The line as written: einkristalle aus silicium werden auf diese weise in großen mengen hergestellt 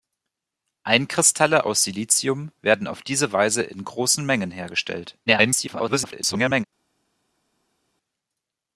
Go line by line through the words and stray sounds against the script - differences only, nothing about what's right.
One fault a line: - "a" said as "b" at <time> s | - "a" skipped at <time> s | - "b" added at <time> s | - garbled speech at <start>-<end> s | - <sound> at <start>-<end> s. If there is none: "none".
- garbled speech at 5.3-6.6 s